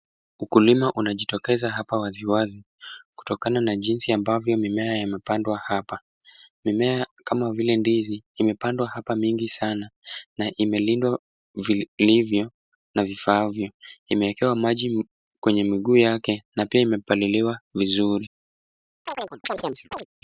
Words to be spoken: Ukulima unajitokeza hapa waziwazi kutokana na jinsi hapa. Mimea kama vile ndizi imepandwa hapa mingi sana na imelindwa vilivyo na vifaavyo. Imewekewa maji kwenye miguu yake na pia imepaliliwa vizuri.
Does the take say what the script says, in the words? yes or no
no